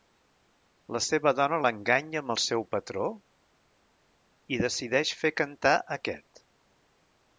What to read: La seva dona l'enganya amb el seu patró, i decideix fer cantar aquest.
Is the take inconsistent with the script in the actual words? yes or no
no